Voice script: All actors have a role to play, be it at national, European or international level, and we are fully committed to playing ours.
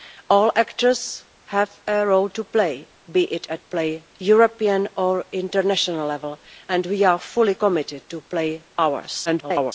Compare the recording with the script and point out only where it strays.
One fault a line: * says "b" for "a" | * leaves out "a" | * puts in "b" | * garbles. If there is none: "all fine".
* says "playing" for "national"
* garbles